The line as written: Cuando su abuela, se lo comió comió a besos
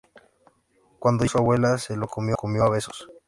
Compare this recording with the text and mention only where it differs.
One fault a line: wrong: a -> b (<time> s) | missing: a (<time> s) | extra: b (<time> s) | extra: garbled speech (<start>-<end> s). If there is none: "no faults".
no faults